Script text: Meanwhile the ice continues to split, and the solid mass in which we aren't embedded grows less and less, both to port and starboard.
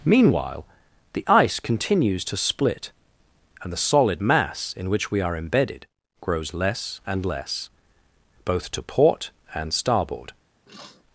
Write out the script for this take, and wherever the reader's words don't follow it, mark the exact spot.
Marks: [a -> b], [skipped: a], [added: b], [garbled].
Meanwhile the ice continues to split, and the solid mass in which we [aren't -> are] embedded grows less and less, both to port and starboard.